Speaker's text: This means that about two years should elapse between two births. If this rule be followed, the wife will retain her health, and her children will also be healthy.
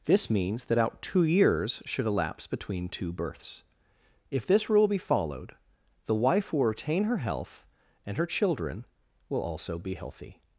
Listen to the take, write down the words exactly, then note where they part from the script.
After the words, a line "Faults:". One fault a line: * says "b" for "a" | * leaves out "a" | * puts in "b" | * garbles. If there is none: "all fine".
This means that out two years should elapse between two births. If this rule be followed, the wife will retain her health, and her children will also be healthy.
Faults:
* says "out" for "about"